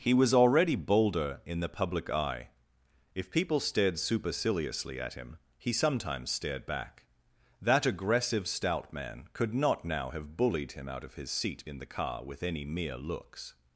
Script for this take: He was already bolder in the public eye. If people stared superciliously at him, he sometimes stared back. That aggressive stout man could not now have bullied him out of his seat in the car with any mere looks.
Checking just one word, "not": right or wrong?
right